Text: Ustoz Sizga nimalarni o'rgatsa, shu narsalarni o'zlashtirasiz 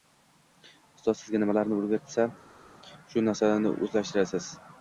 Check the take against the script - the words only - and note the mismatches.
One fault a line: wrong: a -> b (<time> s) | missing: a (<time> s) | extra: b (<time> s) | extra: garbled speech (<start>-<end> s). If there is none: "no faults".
no faults